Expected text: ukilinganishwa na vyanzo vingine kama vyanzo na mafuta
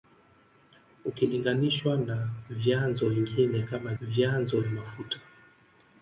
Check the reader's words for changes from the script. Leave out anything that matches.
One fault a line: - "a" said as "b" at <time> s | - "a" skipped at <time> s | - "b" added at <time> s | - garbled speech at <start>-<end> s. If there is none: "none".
none